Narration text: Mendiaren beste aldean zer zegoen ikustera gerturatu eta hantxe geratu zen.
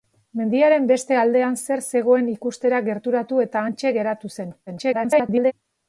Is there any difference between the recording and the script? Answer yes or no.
yes